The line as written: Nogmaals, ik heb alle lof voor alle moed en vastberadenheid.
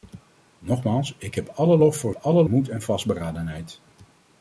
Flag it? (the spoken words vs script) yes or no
no